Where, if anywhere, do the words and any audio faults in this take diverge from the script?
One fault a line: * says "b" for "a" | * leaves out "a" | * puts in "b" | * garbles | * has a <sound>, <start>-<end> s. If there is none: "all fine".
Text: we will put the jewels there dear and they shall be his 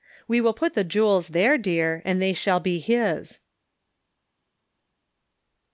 all fine